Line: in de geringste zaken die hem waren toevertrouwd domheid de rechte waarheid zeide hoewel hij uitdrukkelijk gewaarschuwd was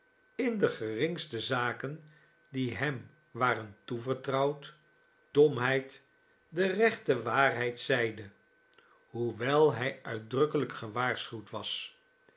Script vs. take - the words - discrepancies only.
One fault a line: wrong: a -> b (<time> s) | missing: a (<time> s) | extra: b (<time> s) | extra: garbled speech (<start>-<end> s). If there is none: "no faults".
no faults